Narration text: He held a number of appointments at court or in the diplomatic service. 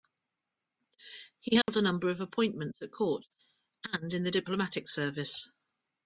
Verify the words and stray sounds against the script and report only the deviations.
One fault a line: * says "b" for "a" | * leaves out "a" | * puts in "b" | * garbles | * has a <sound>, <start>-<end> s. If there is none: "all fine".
* has a dropout, 1.6-1.7 s
* says "and" for "or"